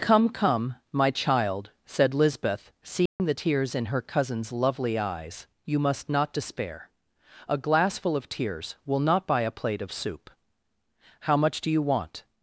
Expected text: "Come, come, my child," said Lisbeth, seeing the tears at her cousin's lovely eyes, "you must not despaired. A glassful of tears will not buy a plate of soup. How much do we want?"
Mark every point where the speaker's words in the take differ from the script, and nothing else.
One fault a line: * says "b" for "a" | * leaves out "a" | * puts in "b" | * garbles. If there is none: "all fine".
* says "in" for "at"
* says "despair" for "despaired"
* says "you" for "we"